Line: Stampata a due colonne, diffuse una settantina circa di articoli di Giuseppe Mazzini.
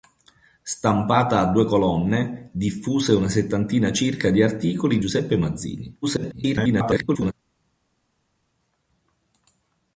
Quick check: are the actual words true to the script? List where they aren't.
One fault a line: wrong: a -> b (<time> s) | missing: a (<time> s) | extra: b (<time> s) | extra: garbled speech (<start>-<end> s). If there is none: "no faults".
missing: di (5.0 s)
extra: garbled speech (6.0-7.3 s)